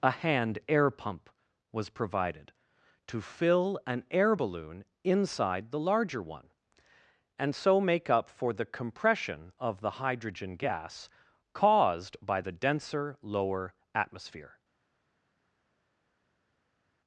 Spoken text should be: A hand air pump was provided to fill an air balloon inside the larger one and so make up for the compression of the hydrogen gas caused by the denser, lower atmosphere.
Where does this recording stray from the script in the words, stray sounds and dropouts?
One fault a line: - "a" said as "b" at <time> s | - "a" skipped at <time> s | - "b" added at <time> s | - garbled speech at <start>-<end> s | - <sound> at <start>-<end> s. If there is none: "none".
none